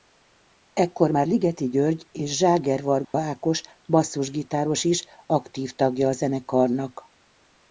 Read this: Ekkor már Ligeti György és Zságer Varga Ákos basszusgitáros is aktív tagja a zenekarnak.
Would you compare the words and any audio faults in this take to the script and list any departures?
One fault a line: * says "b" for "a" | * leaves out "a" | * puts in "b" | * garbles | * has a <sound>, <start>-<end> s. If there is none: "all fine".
* has a dropout, 3.0-3.1 s